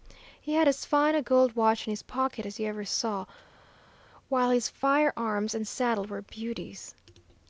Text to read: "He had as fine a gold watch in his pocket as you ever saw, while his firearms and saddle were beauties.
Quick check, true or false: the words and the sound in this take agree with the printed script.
true